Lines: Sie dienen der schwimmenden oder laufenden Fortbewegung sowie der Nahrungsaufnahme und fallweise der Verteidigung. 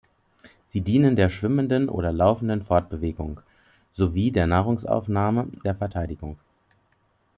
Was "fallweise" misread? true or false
true